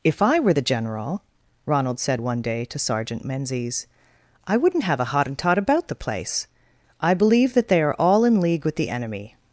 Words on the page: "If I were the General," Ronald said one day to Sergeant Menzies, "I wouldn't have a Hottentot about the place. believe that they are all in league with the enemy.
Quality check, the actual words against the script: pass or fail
fail